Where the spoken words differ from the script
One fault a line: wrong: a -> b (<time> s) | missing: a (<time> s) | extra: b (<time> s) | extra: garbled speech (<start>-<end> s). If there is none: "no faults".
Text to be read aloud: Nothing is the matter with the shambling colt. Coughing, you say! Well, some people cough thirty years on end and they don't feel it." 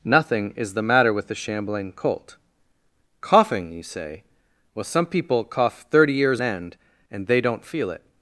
missing: on (6.4 s)